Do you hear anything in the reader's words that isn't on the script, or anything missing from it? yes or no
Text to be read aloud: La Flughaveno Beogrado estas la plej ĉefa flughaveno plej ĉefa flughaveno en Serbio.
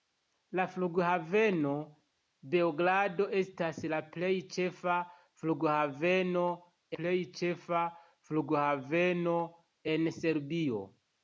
no